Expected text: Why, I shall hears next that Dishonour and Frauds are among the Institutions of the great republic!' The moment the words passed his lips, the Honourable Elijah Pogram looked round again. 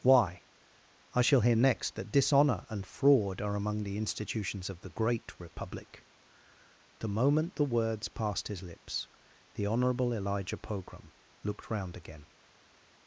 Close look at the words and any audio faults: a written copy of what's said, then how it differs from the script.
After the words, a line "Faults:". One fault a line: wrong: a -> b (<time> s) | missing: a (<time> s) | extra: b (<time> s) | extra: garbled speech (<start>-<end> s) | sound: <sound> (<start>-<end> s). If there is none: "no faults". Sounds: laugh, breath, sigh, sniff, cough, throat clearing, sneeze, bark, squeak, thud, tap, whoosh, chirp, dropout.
Why, I shall hear next that Dishonour and Fraud are among the Institutions of the great republic!' The moment the words passed his lips, the Honourable Elijah Pogram looked round again.
Faults:
wrong: hears -> hear (1.4 s)
wrong: Frauds -> Fraud (2.9 s)